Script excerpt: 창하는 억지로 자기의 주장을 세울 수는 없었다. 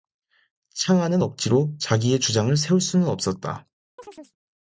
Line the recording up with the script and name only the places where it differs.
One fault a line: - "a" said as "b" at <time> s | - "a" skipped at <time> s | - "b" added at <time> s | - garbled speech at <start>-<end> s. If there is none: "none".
none